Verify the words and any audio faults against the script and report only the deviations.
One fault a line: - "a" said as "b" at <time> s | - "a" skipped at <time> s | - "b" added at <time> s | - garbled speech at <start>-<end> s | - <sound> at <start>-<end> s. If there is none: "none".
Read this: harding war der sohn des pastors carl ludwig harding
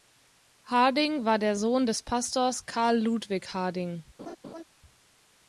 - laugh at 4.2-4.6 s